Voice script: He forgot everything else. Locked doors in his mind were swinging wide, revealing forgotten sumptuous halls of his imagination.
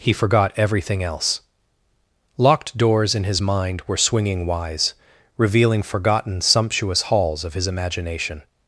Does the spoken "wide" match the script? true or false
false